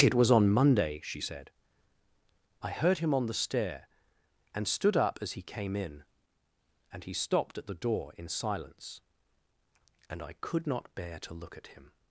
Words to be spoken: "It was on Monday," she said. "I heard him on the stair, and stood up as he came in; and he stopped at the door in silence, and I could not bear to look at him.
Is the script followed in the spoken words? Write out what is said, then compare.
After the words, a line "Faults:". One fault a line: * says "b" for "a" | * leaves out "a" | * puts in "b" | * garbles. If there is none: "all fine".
"It was on Monday," she said. "I heard him on the stair, and stood up as he came in; and he stopped at the door in silence, and I could not bear to look at him.
Faults:
all fine